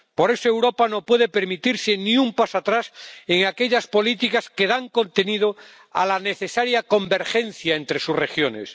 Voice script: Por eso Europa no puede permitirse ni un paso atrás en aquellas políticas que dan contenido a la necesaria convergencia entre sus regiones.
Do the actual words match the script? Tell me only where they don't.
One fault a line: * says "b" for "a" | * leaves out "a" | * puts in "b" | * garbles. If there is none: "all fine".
all fine